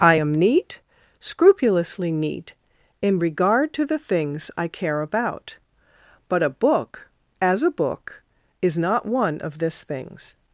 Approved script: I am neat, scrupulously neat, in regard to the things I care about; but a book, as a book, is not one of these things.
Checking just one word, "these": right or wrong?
wrong